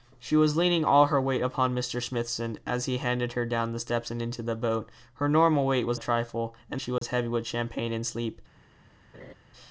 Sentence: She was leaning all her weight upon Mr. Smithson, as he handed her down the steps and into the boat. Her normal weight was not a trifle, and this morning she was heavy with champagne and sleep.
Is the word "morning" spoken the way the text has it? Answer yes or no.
no